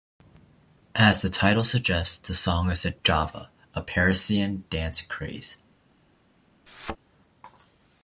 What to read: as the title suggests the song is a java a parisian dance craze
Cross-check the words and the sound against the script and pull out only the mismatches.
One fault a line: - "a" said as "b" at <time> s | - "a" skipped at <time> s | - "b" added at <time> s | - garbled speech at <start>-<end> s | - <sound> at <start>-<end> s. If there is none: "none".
- thud at 6.7-7.0 s